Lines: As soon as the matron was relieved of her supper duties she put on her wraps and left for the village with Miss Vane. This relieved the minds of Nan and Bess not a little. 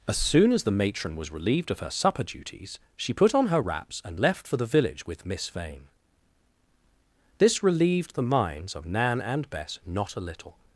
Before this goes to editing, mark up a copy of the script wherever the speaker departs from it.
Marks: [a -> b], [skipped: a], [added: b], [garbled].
As soon as the matron was relieved of her supper duties she put on her wraps and left for the village with Miss Vane. This relieved the minds of Nan and Bess not a little.